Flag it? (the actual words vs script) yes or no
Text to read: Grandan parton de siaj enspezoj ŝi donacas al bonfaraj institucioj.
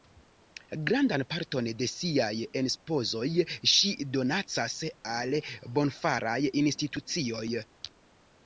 no